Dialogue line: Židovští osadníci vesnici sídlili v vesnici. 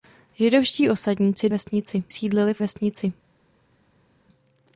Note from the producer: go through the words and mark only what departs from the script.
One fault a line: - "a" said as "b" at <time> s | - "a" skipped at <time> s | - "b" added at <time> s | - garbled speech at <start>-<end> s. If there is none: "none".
none